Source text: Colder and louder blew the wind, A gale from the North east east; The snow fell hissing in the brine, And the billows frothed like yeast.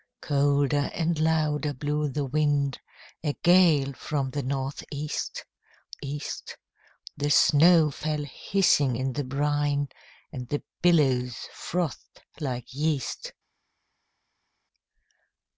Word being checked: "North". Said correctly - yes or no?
yes